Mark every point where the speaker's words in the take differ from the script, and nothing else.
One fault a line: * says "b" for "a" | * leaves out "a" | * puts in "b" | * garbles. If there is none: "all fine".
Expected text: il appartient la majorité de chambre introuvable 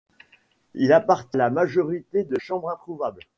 all fine